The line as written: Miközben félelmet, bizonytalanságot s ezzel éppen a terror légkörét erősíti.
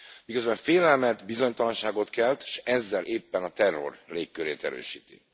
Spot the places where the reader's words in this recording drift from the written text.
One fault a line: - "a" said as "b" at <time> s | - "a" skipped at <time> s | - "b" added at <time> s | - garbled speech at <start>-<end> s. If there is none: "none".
- "kelt" added at 2.1 s